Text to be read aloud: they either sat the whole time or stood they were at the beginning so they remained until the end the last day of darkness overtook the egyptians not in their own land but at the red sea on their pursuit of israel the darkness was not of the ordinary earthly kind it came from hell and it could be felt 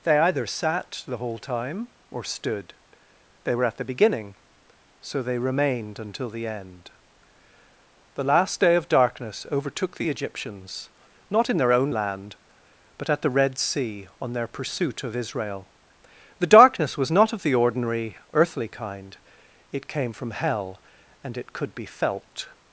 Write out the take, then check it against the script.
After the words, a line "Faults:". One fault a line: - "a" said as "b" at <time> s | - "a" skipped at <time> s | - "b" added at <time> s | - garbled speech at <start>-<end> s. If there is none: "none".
they either sat the whole time or stood they were at the beginning so they remained until the end the last day of darkness overtook the egyptians not in their own land but at the red sea on their pursuit of israel the darkness was not of the ordinary earthly kind it came from hell and it could be felt
Faults:
none